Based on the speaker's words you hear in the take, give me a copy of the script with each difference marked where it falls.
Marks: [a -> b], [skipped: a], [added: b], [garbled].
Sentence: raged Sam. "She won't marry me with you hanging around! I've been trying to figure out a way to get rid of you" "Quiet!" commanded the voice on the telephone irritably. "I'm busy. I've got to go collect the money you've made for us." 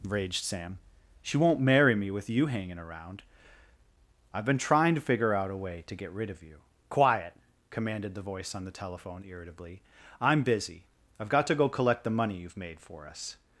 raged Sam. "She won't marry me with you hanging around! I've been trying to figure out a way to get rid of you" "Quiet!" commanded the voice on the telephone irritably. "I'm busy. I've got to go collect the money you've made for us."